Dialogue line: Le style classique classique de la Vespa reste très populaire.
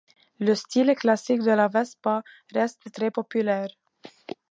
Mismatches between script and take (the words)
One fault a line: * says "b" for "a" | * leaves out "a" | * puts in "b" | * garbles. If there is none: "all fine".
* leaves out "classique"